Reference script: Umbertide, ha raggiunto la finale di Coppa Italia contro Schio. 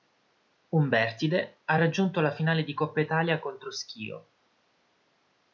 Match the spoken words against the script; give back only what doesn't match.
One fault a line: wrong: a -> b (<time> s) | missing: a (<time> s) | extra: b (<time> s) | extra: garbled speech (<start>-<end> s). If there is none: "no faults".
no faults